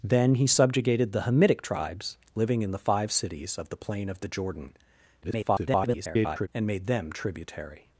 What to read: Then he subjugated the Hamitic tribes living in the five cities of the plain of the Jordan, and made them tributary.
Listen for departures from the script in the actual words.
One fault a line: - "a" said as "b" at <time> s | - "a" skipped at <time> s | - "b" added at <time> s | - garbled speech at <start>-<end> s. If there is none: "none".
- garbled speech at 5.2-6.5 s